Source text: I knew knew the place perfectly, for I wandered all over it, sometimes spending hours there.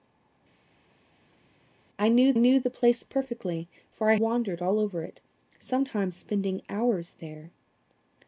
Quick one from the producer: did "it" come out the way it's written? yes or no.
yes